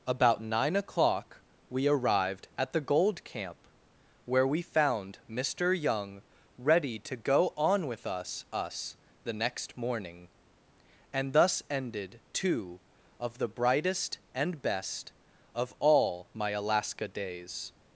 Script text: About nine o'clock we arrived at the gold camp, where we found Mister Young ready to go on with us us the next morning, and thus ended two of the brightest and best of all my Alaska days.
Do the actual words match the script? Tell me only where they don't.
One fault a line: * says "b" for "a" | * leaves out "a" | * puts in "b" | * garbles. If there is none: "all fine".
all fine